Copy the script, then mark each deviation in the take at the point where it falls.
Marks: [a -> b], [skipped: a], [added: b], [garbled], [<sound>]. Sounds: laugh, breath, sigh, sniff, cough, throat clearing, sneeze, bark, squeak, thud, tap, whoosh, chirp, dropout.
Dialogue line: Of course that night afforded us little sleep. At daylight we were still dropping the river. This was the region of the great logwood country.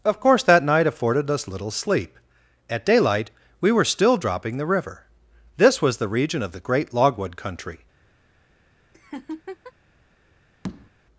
Of course that night afforded us little sleep. At daylight we were still dropping the river. This was the region of the great logwood country. [laugh] [tap]